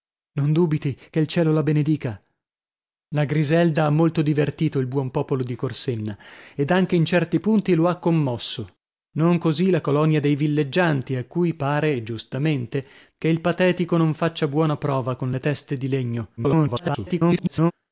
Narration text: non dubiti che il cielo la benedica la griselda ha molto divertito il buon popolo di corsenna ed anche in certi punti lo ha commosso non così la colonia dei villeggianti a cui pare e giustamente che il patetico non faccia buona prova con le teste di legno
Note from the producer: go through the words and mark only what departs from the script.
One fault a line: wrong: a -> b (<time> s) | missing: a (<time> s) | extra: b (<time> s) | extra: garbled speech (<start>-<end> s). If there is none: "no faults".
extra: garbled speech (16.4-17.7 s)